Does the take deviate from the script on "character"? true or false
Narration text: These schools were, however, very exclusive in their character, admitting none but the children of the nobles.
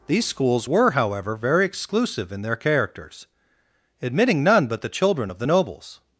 true